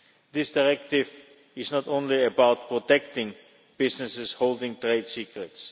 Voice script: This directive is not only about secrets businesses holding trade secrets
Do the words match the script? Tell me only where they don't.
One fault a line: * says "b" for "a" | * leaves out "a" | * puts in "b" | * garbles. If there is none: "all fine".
* says "protecting" for "secrets"